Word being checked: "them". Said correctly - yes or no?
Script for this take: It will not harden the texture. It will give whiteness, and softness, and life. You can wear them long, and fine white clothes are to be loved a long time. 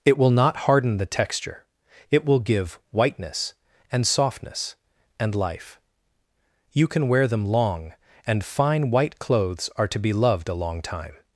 yes